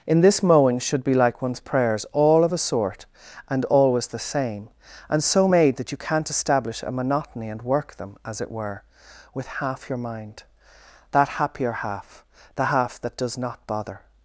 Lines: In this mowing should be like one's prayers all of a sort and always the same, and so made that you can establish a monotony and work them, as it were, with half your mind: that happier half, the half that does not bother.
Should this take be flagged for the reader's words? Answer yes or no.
yes